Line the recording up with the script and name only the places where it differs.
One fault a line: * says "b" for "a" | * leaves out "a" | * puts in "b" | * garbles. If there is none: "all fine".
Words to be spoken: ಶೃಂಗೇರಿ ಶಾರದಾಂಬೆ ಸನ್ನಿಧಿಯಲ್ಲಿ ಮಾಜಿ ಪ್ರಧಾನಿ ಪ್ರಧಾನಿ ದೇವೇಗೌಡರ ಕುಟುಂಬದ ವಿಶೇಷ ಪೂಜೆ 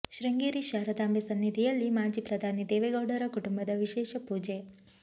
* leaves out "ಪ್ರಧಾನಿ"